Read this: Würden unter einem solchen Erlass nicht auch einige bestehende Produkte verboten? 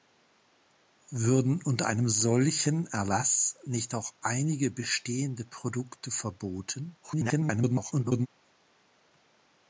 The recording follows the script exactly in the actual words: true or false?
false